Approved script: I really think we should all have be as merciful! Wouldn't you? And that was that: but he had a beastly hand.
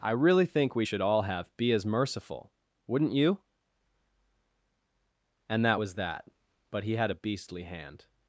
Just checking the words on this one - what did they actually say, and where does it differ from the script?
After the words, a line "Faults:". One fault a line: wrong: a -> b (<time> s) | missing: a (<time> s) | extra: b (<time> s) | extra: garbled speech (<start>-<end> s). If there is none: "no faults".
I really think we should all have be as merciful! Wouldn't you? And that was that: but he had a beastly hand.
Faults:
no faults